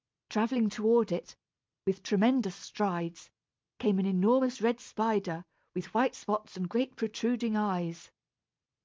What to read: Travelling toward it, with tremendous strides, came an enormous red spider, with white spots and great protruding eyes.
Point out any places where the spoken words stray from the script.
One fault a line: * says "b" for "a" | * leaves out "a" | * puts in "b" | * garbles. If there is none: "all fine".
all fine